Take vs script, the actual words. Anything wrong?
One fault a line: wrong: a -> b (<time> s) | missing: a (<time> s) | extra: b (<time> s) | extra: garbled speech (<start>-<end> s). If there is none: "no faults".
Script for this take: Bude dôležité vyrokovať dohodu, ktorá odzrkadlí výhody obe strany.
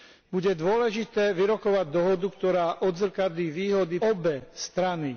no faults